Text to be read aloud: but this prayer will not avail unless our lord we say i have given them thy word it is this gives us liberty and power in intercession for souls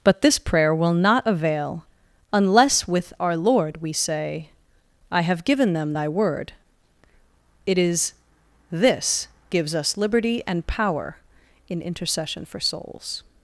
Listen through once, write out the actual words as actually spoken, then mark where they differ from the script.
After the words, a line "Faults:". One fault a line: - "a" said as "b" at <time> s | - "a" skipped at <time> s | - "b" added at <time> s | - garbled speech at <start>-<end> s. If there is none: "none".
but this prayer will not avail unless with our lord we say i have given them thy word it is this gives us liberty and power in intercession for souls
Faults:
- "with" added at 2.9 s